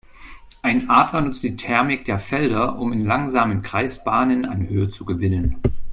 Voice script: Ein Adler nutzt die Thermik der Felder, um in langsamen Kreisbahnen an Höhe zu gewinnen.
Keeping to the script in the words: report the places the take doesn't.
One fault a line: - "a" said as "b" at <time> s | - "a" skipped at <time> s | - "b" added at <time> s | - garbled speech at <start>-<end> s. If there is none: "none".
none